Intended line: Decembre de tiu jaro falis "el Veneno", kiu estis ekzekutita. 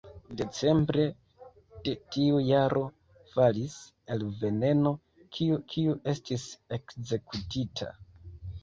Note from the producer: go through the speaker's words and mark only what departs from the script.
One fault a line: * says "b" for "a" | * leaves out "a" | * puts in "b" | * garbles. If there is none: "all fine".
* puts in "kiu"